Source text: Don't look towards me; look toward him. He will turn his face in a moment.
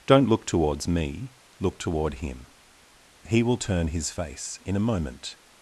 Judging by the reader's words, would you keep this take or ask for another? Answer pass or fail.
pass